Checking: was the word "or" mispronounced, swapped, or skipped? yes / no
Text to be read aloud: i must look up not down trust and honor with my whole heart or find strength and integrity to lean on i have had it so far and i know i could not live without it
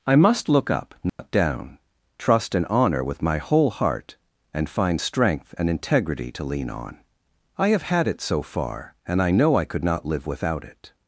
yes